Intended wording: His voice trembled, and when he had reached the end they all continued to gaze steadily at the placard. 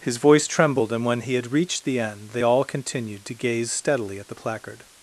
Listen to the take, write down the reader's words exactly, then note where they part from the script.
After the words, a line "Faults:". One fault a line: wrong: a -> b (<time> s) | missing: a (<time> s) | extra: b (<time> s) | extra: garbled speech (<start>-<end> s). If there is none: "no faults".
His voice trembled, and when he had reached the end they all continued to gaze steadily at the placard.
Faults:
no faults